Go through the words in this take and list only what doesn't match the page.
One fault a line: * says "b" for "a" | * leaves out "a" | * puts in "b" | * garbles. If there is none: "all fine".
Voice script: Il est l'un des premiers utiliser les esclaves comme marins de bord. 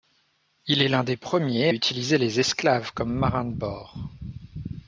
all fine